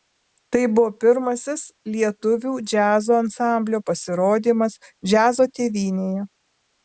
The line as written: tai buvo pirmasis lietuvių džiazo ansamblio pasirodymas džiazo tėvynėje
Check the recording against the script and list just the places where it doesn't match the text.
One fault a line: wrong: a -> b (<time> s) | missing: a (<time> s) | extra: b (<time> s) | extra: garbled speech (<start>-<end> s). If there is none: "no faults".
no faults